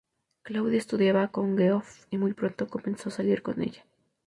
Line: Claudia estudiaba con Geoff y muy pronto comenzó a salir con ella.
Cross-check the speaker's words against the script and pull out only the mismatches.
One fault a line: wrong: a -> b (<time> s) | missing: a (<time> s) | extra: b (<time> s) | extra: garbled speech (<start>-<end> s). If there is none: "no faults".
no faults